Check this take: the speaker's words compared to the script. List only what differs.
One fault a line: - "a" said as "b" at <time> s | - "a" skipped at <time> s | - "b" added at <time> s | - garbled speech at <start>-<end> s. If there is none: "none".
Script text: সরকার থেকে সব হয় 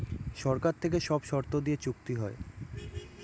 - "শর্ত দিয়ে চুক্তি" added at 1.2 s